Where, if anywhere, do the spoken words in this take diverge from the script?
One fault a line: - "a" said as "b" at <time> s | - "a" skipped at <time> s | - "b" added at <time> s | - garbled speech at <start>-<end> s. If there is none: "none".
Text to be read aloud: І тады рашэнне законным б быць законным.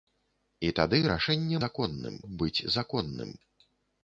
none